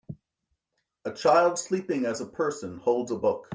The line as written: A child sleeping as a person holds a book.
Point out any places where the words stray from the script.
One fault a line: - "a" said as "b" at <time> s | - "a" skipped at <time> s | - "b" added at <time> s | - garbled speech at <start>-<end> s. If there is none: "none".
none